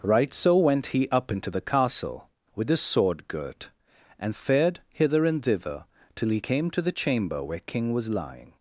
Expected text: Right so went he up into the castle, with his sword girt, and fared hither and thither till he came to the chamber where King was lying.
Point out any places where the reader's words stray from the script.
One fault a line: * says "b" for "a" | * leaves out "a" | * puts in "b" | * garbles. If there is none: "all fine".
all fine